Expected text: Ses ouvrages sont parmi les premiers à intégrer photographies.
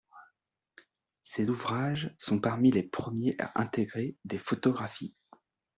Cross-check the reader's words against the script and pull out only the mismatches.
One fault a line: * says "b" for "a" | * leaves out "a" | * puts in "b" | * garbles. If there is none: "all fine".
* puts in "des"